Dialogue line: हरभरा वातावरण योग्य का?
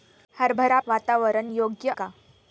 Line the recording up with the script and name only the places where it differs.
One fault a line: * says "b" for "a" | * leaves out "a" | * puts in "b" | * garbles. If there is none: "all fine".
all fine